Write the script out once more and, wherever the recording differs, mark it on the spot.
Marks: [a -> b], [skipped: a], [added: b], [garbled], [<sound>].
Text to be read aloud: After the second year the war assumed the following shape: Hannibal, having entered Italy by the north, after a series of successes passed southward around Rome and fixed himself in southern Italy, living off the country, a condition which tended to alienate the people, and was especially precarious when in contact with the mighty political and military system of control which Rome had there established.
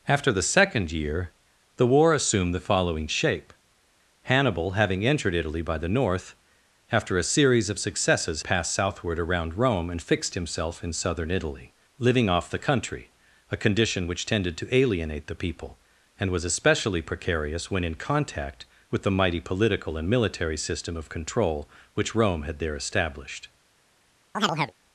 After the second year the war assumed the following shape: Hannibal, having entered Italy by the north, after a series of successes passed southward around Rome and fixed himself in southern Italy, living off the country, a condition which tended to alienate the people, and was especially precarious when in contact with the mighty political and military system of control which Rome had there established. [chirp]